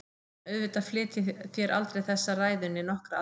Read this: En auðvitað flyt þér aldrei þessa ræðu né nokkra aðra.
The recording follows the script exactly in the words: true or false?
false